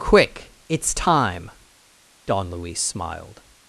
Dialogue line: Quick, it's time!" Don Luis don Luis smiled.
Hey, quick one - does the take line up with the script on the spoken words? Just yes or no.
no